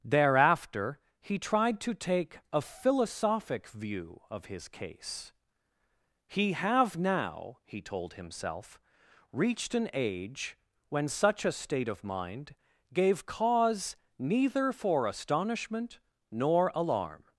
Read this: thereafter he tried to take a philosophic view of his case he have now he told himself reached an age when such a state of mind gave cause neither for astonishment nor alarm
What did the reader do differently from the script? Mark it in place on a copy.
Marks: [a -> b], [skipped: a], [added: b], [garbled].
thereafter he tried to take a philosophic view of his case he have now he told himself reached an age when such a state of mind gave cause neither for astonishment nor alarm